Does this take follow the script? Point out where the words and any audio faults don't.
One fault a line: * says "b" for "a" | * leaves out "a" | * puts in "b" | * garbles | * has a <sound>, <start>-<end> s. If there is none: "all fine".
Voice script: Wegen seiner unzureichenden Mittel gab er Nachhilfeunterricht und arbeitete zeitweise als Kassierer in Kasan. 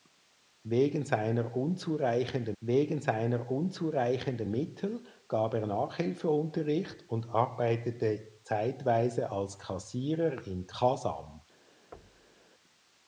* puts in "wegen seiner unzureichenden"
* has a thud, 11.9-12.5 s